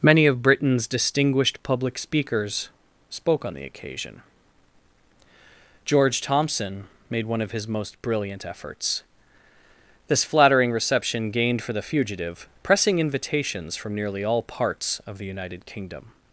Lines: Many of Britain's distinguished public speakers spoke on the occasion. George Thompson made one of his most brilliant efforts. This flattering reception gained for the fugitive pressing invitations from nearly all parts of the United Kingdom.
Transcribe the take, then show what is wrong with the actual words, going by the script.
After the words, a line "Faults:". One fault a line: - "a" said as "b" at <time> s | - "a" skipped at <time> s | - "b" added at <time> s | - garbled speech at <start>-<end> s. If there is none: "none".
Many of Britain's distinguished public speakers spoke on the occasion. George Thompson made one of his most brilliant efforts. This flattering reception gained for the fugitive pressing invitations from nearly all parts of the United Kingdom.
Faults:
none